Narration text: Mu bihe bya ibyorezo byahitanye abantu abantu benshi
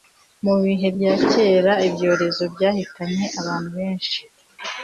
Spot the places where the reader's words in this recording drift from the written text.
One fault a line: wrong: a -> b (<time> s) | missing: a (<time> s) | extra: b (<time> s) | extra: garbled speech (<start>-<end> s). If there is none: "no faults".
extra: kera (1.3 s)
missing: abantu (3.7 s)